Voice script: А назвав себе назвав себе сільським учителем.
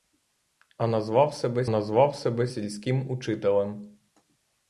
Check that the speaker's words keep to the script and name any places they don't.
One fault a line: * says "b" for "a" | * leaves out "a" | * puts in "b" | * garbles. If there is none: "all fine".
all fine